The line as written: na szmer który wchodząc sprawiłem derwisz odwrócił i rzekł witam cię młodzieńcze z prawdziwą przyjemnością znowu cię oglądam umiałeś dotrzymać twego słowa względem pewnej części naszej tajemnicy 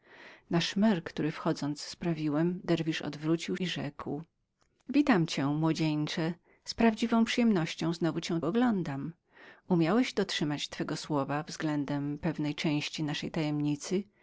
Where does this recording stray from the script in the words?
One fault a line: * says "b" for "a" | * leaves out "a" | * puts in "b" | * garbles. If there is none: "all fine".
all fine